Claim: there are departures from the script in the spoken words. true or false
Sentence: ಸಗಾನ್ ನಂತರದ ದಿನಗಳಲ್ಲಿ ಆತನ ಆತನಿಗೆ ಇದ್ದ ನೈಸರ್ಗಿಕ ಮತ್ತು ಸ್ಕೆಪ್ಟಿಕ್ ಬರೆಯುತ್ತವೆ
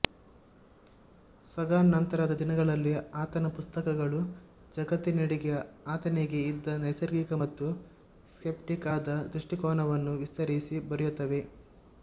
true